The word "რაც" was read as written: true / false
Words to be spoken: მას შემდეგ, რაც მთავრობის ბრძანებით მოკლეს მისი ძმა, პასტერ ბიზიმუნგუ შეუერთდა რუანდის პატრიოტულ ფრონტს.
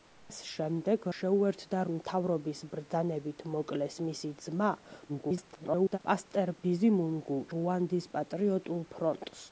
false